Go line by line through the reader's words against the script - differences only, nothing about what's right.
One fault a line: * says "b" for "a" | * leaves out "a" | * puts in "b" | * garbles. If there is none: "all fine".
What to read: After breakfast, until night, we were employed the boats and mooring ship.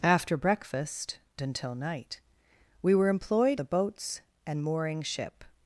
all fine